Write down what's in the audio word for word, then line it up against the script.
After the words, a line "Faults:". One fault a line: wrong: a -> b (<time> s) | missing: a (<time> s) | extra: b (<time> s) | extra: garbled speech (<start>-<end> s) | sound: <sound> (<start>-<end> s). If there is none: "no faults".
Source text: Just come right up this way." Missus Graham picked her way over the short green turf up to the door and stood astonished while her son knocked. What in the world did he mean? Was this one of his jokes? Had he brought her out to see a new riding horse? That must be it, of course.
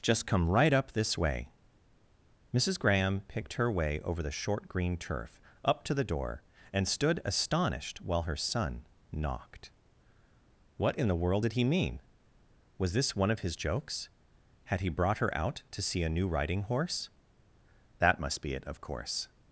Just come right up this way." Missus Graham picked her way over the short green turf up to the door and stood astonished while her son knocked. What in the world did he mean? Was this one of his jokes? Had he brought her out to see a new riding horse? That must be it, of course.
Faults:
no faults